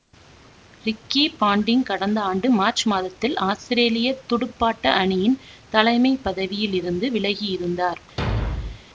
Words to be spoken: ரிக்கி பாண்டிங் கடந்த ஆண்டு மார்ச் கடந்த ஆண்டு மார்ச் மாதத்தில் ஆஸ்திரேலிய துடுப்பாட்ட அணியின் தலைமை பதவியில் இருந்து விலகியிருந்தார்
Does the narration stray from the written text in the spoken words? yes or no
yes